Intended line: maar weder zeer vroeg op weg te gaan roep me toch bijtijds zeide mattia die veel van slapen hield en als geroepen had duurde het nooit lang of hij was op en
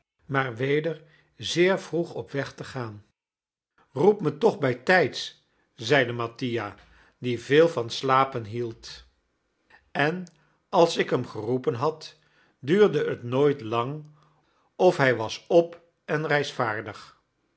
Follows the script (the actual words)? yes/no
no